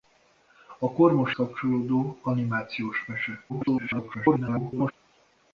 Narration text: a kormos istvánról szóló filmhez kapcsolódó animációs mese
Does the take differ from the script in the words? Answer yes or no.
yes